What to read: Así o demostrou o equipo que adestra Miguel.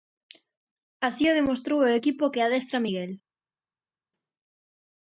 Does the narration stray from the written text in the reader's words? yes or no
no